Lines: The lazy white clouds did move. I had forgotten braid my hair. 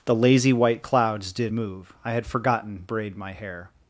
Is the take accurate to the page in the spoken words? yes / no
yes